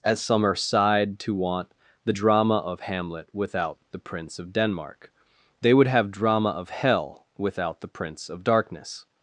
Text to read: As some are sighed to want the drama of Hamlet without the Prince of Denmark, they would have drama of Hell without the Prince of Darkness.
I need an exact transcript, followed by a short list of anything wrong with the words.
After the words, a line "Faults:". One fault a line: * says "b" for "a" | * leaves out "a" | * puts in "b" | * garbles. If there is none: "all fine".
As some are sighed to want the drama of Hamlet without the Prince of Denmark, they would have drama of Hell without the Prince of Darkness.
Faults:
all fine